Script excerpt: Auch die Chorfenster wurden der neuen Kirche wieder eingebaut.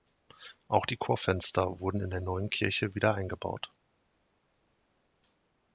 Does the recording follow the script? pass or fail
fail